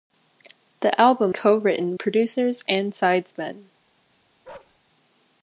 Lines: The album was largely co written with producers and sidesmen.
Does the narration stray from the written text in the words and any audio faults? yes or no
yes